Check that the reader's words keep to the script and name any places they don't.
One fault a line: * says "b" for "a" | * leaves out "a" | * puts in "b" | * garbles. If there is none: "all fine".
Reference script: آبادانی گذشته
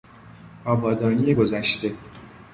all fine